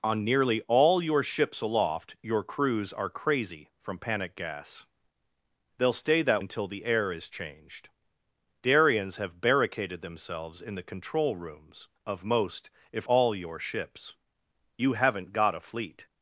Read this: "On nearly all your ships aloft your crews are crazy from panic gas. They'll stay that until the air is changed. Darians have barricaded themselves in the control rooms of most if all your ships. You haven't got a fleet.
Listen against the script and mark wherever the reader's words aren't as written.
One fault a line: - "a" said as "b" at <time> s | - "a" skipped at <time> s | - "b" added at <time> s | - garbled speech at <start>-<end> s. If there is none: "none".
none